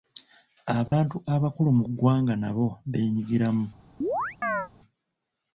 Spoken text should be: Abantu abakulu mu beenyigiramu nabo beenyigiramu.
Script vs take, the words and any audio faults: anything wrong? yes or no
yes